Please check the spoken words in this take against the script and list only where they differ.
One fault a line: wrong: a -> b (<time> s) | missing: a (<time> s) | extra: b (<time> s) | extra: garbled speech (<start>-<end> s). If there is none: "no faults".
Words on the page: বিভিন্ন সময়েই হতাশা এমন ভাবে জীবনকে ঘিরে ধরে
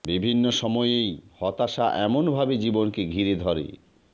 no faults